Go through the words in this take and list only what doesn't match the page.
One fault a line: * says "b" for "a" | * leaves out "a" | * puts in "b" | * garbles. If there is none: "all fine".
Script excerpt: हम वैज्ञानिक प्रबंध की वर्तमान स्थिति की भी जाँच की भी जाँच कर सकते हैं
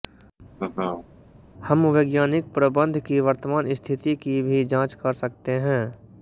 * leaves out "की भी जाँच"